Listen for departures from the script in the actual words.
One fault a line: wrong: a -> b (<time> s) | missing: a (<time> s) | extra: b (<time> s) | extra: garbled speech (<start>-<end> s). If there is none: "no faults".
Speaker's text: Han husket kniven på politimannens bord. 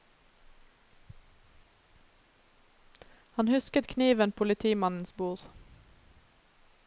missing: på (4.3 s)